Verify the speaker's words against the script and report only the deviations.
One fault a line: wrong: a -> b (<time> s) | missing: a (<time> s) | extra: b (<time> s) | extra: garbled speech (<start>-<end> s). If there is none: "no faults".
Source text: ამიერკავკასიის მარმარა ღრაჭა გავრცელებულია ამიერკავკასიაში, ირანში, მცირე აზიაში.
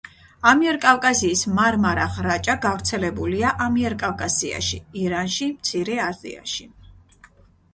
no faults